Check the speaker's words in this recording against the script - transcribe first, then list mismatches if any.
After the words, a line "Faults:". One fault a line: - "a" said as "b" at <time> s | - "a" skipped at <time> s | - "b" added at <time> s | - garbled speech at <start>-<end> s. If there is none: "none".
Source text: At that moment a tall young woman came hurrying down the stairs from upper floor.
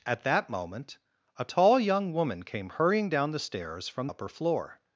At that moment a tall young woman came hurrying down the stairs from upper floor.
Faults:
none